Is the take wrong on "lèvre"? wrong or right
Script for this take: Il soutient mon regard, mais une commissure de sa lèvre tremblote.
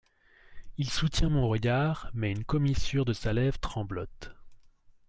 right